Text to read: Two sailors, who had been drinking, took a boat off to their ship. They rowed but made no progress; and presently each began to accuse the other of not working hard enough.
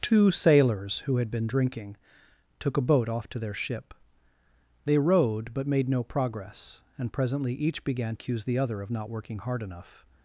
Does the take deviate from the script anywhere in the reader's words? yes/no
yes